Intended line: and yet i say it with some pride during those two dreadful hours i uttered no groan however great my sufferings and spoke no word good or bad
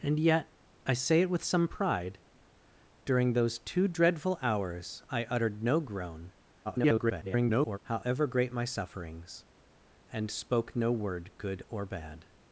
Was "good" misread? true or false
false